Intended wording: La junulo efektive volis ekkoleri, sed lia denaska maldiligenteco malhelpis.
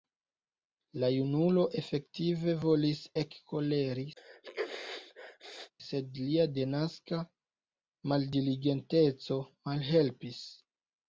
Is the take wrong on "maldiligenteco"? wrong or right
right